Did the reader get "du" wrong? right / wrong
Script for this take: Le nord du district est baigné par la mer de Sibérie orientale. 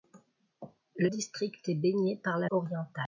wrong